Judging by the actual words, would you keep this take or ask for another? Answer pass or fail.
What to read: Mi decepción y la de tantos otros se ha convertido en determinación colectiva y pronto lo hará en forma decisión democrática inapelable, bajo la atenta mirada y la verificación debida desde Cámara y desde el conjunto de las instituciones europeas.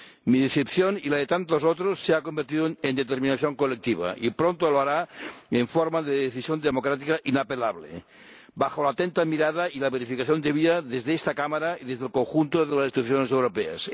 fail